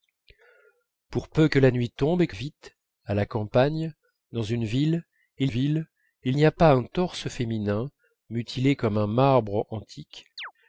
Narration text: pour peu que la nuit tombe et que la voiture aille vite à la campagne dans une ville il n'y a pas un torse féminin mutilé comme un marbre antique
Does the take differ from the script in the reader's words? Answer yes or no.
yes